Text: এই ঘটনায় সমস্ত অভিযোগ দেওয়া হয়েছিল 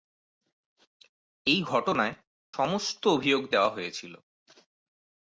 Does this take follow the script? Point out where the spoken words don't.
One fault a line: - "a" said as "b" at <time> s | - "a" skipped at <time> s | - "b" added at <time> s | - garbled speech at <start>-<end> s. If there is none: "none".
none